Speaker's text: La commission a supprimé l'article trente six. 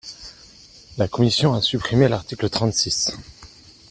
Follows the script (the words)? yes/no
yes